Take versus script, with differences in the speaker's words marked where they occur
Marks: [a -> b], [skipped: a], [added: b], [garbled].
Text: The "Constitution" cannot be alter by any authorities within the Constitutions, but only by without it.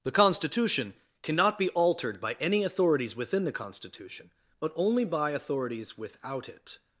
The "Constitution" cannot be [alter -> altered] by any authorities within the [Constitutions, -> Constitution] but only by [added: authorities] without it.